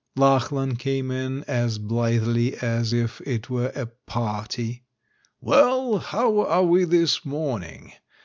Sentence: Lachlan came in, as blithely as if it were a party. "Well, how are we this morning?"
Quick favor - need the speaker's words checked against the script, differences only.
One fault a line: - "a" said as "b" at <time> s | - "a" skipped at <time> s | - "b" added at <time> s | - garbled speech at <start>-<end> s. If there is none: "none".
none